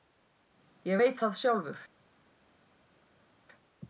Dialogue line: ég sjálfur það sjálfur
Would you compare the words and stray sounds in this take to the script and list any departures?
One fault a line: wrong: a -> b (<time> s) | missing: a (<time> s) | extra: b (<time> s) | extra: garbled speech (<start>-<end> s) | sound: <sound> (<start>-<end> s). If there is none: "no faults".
wrong: sjálfur -> veit (1.0 s)